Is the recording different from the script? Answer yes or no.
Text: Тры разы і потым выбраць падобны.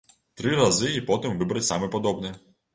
yes